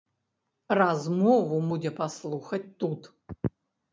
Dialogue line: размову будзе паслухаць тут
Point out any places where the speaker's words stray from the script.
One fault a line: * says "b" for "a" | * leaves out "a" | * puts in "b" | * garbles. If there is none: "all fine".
all fine